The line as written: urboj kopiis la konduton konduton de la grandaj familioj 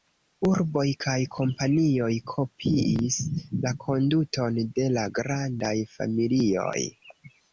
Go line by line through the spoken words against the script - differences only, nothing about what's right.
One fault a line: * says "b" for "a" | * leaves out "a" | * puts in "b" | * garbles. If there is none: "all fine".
* puts in "kaj kompanioj"
* leaves out "konduton"